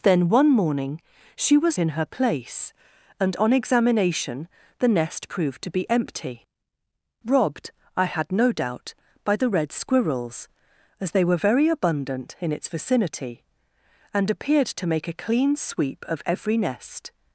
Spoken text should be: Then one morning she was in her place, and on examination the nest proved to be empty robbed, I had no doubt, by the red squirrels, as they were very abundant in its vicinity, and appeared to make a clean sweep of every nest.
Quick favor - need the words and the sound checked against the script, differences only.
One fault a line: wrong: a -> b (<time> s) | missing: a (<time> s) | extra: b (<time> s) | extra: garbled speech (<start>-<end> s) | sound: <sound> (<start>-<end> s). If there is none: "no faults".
no faults